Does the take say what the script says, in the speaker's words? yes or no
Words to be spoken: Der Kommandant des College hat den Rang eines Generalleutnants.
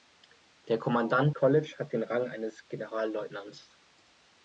no